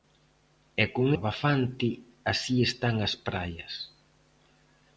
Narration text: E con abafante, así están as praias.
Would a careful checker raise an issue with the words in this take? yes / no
no